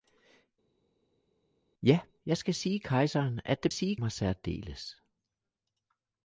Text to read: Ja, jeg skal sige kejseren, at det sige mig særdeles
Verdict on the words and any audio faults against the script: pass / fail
pass